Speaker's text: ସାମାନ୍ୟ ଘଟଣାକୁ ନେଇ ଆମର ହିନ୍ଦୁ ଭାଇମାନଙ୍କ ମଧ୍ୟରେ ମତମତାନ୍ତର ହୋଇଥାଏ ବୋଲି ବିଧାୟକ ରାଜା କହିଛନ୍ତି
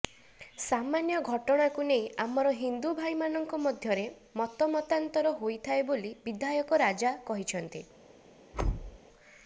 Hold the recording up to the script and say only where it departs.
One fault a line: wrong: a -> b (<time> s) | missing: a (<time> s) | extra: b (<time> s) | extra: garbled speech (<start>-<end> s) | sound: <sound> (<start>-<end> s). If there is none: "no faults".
sound: thud (8.5-9.0 s)